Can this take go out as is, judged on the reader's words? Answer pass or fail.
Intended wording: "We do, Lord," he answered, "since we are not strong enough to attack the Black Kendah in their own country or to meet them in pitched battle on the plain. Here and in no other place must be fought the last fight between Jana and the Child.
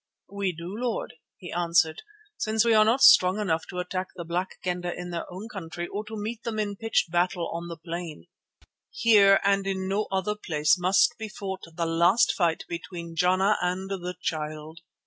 pass